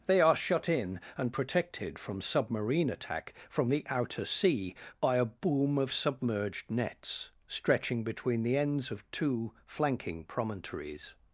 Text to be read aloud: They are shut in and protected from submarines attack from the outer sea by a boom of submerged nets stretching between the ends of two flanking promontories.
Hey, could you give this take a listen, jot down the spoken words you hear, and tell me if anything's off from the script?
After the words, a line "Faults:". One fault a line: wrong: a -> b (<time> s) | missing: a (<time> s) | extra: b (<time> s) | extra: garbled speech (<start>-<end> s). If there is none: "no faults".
They are shut in and protected from submarine attack from the outer sea by a boom of submerged nets stretching between the ends of two flanking promontories.
Faults:
wrong: submarines -> submarine (2.2 s)